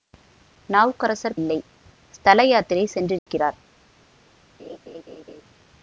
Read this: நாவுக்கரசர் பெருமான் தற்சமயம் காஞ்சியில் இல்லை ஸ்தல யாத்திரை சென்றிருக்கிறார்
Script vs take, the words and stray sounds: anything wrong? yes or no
yes